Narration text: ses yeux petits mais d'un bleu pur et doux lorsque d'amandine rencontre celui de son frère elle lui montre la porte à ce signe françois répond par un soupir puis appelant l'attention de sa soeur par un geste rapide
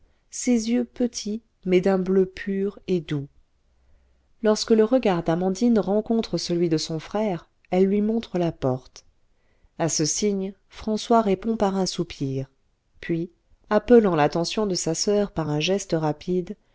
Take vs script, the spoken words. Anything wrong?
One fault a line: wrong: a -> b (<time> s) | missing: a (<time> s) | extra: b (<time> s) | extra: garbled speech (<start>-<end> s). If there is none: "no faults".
extra: le regard (4.7 s)